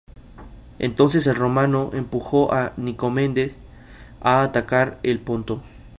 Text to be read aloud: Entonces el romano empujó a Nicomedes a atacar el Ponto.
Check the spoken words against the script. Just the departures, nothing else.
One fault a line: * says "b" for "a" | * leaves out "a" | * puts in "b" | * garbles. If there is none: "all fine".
all fine